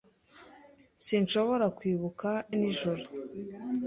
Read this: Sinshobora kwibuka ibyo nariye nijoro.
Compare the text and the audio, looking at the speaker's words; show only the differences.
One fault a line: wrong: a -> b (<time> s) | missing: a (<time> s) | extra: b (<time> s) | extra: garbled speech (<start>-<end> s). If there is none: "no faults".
missing: ibyo nariye (2.3 s)